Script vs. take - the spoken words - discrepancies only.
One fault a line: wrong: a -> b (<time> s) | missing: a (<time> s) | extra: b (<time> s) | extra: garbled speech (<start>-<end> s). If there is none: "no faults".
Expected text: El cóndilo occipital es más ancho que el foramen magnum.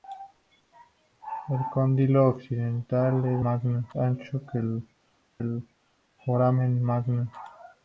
wrong: más -> magnum (3.4 s)
extra: el (5.4 s)